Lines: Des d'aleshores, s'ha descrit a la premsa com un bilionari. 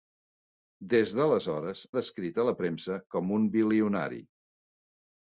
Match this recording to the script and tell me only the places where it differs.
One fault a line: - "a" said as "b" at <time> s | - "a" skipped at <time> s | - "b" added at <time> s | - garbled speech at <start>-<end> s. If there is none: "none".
- "s'ha" skipped at 1.8 s